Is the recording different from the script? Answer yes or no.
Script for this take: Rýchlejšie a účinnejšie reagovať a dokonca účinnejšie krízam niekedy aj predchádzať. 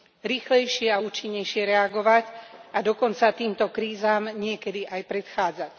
yes